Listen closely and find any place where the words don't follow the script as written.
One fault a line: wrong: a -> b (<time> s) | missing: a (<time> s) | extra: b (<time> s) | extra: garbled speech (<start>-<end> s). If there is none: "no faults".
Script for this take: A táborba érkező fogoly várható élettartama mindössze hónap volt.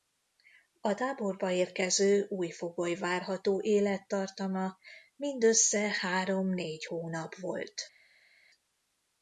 extra: új (2.3 s)
extra: három négy (6.0 s)